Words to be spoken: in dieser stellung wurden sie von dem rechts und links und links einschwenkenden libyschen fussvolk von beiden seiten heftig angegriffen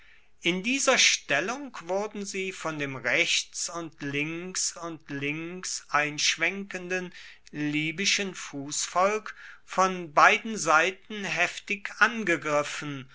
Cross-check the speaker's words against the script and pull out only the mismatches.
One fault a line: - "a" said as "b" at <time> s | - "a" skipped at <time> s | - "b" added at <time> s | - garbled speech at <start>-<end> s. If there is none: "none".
none